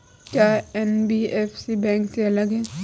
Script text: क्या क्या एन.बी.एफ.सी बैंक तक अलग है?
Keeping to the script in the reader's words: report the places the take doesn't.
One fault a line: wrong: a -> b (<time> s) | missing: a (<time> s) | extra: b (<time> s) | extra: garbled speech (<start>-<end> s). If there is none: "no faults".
missing: क्या (0.5 s)
wrong: तक -> से (2.1 s)